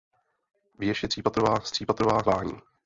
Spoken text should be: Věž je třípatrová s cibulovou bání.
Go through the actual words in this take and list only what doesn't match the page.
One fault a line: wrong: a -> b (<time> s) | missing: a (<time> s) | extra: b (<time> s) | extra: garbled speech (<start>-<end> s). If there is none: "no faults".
wrong: cibulovou -> třípatrová (1.7 s)